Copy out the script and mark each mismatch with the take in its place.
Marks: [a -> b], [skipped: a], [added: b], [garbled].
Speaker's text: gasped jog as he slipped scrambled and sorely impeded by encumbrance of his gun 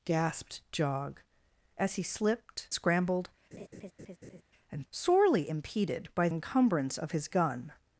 gasped jog as he slipped scrambled and sorely impeded by encumbrance of his gun